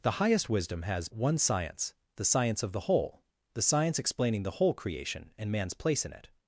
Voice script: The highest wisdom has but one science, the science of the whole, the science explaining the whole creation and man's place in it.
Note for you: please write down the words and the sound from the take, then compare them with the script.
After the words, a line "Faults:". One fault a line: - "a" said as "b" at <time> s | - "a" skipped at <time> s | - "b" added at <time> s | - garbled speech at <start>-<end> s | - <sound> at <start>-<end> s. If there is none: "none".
The highest wisdom has one science, the science of the whole, the science explaining the whole creation and man's place in it.
Faults:
- "but" skipped at 1.1 s